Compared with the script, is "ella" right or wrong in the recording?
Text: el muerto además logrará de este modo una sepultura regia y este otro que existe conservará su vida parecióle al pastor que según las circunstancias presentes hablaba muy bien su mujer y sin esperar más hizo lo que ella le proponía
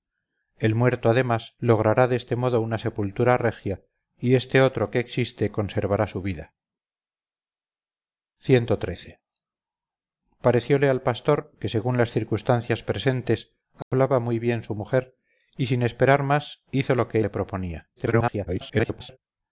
wrong